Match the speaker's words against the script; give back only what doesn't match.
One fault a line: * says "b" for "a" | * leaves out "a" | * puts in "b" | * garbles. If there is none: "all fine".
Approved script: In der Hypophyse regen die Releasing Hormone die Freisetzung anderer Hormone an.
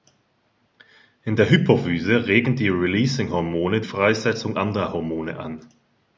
* leaves out "die"